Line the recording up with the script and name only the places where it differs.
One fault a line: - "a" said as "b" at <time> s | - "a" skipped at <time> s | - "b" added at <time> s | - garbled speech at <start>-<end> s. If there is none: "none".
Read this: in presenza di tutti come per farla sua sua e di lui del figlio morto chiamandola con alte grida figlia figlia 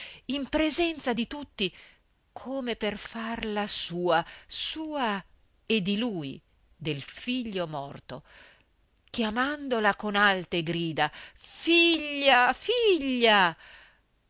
none